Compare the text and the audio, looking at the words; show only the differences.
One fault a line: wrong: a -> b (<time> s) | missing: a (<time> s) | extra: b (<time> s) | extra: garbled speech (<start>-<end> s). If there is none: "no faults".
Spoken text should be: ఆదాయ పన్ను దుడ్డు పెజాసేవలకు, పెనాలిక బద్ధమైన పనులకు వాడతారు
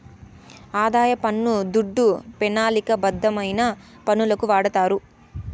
missing: పెజాసేవలకు (2.0 s)